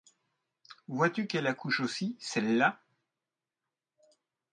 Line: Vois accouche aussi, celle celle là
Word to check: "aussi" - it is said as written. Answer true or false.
true